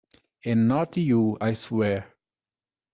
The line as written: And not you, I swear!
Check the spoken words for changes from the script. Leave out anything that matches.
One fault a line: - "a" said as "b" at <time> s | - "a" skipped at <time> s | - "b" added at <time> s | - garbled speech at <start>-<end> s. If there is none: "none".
none